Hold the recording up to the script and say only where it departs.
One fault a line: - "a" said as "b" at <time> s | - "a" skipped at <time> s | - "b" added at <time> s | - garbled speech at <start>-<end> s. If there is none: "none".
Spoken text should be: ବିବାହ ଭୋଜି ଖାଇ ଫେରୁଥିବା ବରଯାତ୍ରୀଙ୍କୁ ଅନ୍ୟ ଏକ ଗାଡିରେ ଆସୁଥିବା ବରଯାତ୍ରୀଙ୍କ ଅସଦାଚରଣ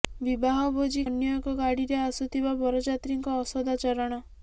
- "ଖାଇ ଫେରୁଥିବା ବରଯାତ୍ରୀଙ୍କୁ" skipped at 1.0 s